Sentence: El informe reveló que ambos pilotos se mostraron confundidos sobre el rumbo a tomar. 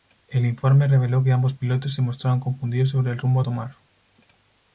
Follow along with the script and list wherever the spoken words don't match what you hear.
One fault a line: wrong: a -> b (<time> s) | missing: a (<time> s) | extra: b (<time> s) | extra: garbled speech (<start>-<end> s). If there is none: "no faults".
no faults